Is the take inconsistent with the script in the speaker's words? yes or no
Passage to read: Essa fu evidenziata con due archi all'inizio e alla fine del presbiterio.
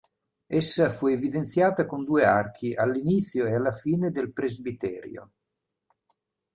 no